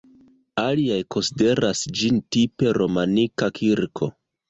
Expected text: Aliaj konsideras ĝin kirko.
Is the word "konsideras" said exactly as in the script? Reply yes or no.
yes